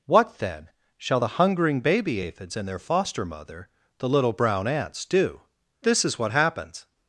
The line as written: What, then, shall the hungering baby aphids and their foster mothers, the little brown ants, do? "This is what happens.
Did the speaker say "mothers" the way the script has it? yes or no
no